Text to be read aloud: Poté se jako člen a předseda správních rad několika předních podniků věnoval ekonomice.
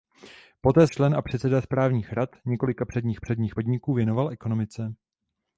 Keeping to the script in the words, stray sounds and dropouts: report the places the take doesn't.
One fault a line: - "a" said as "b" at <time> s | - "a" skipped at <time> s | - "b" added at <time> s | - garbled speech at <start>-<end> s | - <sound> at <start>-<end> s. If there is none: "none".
- "se jako" skipped at 0.9 s
- "předních" added at 3.2 s